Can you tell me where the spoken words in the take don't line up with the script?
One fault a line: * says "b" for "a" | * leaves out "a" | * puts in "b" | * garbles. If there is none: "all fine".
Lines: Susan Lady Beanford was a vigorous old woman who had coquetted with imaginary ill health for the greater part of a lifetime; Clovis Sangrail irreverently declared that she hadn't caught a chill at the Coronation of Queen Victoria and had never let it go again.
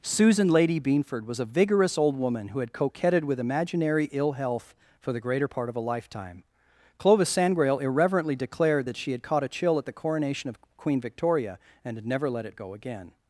* says "had" for "hadn't"